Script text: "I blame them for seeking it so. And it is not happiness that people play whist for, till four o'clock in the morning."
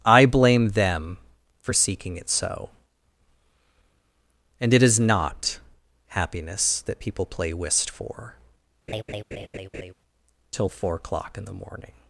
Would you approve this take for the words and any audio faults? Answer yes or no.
no